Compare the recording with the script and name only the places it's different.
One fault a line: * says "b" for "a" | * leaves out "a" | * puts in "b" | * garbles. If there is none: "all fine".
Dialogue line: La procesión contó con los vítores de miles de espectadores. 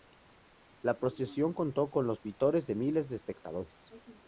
all fine